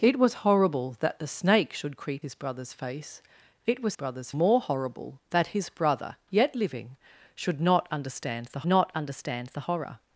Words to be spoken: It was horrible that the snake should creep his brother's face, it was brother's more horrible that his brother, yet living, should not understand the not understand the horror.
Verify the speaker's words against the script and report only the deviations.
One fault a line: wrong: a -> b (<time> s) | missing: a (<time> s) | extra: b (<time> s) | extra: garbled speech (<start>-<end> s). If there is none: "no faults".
no faults